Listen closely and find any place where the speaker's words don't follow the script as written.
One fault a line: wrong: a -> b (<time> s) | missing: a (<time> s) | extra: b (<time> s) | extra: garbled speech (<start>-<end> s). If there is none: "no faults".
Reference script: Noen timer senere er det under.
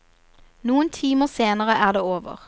wrong: under -> over (2.0 s)